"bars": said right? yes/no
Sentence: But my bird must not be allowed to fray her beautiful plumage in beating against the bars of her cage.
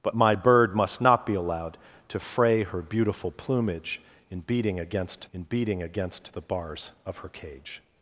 yes